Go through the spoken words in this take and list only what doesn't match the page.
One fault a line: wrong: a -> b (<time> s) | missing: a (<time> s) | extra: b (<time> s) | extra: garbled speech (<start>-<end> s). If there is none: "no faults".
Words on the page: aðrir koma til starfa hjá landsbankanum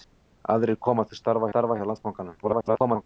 extra: starfa (1.5 s)
extra: garbled speech (2.4-3.0 s)